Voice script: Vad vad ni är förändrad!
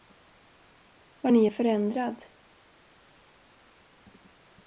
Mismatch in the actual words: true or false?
true